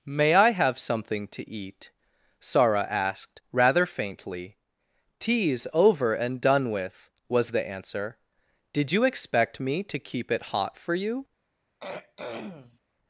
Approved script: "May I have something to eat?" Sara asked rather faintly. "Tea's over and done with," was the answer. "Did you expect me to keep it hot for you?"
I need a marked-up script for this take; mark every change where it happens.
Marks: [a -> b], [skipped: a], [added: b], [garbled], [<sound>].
"May I have something to eat?" Sara asked rather faintly. "Tea's over and done with," was the answer. "Did you expect me to keep it hot for you?" [throat clearing]